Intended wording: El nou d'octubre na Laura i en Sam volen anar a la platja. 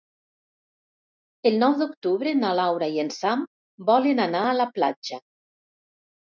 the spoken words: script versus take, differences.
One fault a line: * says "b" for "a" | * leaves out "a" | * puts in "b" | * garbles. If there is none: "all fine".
all fine